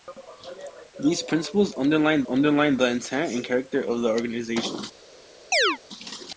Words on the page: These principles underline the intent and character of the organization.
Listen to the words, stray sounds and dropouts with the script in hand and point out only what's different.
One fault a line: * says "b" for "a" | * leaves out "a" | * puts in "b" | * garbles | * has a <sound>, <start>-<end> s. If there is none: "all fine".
* puts in "underline"
* has a chirp, 5.5-5.8 s